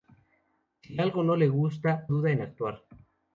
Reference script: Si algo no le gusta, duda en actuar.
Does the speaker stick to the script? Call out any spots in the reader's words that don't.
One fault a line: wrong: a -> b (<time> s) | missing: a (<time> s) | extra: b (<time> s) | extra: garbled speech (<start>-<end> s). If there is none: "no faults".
no faults